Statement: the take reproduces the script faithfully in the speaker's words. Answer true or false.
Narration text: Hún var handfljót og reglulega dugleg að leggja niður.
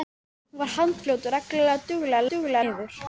false